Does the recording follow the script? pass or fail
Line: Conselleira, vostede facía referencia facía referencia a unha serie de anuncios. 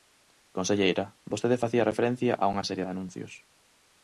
fail